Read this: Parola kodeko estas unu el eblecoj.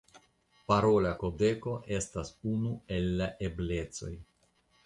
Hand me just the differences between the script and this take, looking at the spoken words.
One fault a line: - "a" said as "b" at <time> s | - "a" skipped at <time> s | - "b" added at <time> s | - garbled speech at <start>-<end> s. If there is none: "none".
- "la" added at 3.2 s